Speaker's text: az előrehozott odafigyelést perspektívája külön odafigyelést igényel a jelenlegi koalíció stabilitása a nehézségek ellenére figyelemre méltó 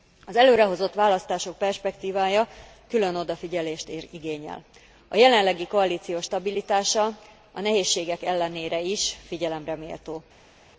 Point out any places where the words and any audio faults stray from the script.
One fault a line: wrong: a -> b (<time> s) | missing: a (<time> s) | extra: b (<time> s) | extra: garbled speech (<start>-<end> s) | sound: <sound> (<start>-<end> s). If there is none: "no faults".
wrong: odafigyelést -> választások (0.9 s)
extra: is (8.8 s)